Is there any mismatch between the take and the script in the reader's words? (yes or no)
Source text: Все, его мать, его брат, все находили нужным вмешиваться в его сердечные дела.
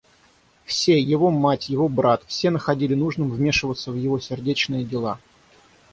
no